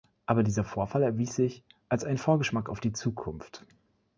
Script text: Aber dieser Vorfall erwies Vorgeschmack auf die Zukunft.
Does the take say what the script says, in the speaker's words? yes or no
no